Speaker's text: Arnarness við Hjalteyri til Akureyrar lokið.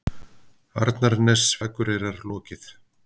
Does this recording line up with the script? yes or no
no